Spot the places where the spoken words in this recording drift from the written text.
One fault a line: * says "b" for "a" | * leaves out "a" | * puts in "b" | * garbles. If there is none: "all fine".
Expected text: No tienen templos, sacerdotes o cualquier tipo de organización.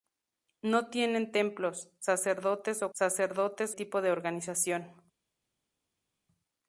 * says "sacerdotes" for "cualquier"